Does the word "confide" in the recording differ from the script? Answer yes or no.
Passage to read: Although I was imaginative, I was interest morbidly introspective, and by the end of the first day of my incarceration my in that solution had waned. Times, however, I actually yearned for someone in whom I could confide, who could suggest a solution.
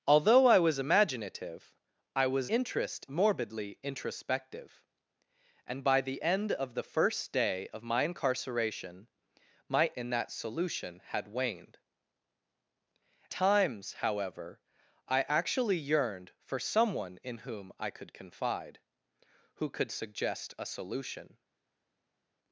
no